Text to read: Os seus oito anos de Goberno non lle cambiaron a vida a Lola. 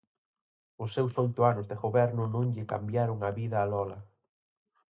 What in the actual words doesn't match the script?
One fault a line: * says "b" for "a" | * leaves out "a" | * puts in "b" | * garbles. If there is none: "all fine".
all fine